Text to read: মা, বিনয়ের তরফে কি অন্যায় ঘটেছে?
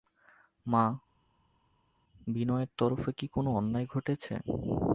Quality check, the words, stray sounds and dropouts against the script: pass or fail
fail